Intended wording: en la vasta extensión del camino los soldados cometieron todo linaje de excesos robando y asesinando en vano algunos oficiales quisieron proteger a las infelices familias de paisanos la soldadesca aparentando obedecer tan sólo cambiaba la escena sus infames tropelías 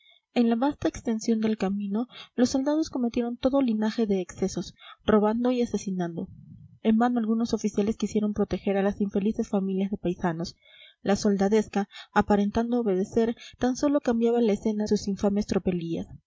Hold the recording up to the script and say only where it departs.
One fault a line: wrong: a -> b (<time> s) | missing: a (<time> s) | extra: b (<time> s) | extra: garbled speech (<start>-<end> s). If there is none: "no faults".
no faults